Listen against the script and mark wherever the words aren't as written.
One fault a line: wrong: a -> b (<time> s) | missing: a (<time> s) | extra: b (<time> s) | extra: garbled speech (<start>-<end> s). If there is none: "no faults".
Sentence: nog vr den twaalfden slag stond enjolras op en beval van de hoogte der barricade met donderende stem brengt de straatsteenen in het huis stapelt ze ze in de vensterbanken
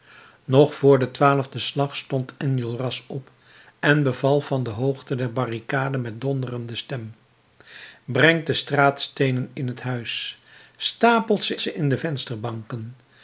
no faults